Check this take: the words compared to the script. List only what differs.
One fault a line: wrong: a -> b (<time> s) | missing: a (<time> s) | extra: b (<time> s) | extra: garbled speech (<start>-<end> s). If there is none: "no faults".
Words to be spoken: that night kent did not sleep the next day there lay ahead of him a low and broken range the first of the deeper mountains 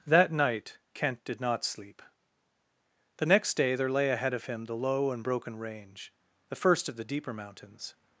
wrong: a -> the (4.7 s)